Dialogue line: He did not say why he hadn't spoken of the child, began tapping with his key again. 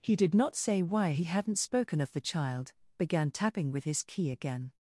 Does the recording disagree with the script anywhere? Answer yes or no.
no